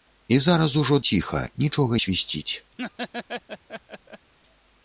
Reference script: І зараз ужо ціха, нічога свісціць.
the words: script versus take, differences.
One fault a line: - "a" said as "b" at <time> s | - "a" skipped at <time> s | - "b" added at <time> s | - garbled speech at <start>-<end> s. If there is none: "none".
none